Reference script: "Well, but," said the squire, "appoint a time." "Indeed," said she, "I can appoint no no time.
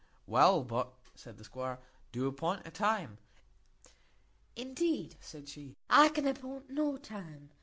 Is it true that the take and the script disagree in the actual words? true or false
true